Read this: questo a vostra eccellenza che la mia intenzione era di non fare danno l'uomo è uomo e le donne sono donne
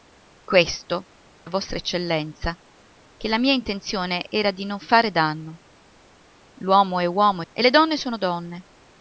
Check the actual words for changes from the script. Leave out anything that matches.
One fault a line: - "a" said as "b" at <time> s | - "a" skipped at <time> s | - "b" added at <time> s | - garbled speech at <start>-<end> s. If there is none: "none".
none